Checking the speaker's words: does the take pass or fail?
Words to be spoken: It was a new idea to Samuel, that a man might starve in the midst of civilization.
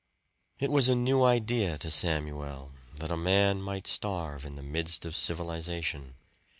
pass